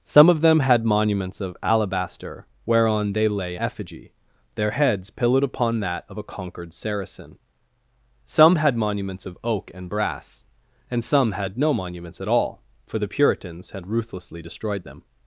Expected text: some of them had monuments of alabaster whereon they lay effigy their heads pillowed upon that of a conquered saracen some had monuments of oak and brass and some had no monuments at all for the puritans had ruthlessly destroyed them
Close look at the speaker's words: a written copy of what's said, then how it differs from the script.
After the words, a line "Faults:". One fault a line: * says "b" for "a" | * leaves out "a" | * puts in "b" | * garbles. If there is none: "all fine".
some of them had monuments of alabaster whereon they lay effigy their heads pillowed upon that of a conquered saracen some had monuments of oak and brass and some had no monuments at all for the puritans had ruthlessly destroyed them
Faults:
all fine